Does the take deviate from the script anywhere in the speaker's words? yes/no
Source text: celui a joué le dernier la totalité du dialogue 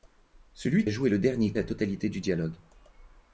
no